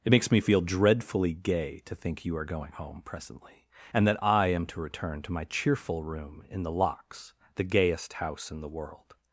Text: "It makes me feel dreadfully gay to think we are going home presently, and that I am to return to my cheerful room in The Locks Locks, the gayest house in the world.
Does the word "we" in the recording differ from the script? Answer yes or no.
yes